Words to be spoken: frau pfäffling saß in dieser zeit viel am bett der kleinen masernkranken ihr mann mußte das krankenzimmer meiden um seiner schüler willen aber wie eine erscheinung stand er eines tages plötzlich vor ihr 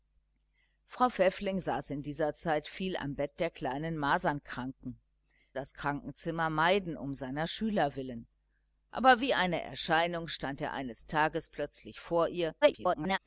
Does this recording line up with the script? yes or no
no